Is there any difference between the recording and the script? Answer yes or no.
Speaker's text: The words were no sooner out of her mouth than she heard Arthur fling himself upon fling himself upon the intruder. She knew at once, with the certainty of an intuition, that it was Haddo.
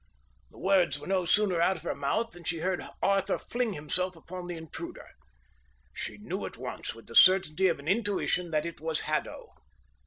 yes